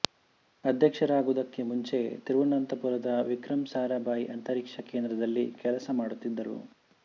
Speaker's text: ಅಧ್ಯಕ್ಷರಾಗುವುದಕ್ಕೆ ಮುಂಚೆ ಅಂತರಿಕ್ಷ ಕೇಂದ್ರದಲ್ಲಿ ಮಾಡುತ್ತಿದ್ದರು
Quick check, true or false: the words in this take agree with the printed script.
false